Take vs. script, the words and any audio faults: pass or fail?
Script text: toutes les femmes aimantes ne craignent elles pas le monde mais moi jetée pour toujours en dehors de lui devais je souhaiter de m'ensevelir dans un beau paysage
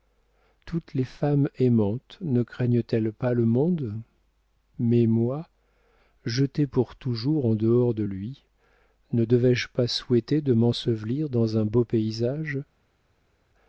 fail